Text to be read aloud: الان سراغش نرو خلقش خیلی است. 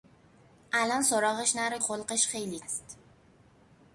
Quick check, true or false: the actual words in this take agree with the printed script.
true